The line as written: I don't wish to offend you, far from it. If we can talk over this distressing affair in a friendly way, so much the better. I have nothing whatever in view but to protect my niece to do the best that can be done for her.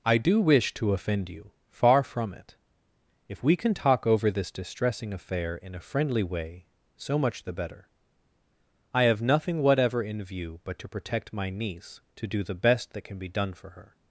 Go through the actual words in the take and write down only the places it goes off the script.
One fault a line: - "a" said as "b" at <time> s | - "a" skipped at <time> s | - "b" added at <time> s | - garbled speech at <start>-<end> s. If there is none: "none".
- "don't" said as "do" at 0.2 s